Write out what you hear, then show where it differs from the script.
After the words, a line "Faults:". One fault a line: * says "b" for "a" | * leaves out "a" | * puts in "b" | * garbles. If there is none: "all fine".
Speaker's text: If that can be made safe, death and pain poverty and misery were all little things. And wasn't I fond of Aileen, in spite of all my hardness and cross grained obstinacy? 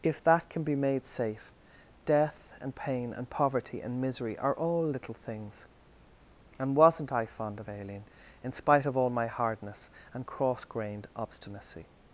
If that can be made safe, death and pain and poverty and misery are all little things. And wasn't I fond of Aileen, in spite of all my hardness and cross grained obstinacy?
Faults:
* puts in "and"
* says "are" for "were"